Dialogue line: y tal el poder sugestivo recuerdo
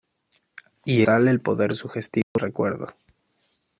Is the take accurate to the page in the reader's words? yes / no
yes